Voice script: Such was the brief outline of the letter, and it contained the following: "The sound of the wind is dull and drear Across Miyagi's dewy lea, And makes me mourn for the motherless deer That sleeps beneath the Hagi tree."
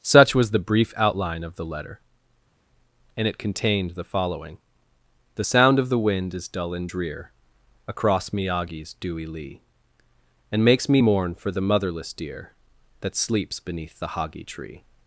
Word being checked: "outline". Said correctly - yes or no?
yes